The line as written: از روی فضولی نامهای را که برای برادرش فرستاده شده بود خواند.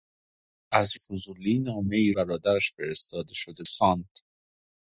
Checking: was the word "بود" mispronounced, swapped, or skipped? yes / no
yes